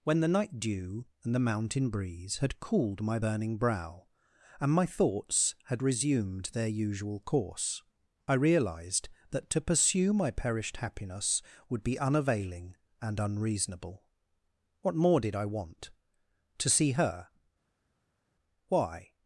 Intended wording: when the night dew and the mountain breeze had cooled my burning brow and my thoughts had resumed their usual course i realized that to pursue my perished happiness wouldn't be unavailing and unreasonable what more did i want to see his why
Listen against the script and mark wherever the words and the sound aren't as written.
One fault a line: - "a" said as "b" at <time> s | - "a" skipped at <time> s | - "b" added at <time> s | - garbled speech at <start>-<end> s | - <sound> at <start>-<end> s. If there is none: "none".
- "wouldn't" said as "would" at 11.7 s
- "his" said as "her" at 16.9 s